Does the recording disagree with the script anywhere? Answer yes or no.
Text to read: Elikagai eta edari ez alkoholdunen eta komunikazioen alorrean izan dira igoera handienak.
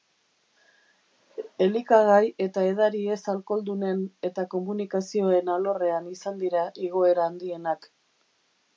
no